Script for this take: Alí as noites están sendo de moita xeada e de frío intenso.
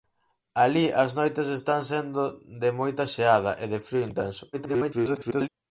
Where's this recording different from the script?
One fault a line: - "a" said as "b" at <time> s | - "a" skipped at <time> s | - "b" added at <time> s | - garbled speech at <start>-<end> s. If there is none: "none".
- garbled speech at 4.5-5.5 s